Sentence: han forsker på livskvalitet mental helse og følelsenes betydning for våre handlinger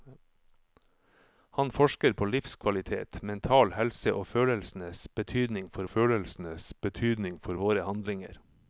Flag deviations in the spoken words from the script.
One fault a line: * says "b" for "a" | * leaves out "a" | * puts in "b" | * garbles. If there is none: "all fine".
* puts in "følelsenes betydning for"